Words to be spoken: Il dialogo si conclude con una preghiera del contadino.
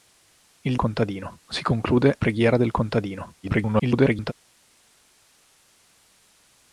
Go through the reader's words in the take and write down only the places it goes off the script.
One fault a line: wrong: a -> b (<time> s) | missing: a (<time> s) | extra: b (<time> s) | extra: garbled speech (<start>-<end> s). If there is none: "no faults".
wrong: dialogo -> contadino (0.8 s)
missing: con una (2.2 s)
extra: garbled speech (3.4-4.3 s)